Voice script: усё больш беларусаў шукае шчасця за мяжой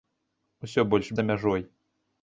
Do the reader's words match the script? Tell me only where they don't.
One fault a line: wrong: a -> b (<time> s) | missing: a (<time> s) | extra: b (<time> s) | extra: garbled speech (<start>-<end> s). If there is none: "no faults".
missing: беларусаў шукае шчасця (1.1 s)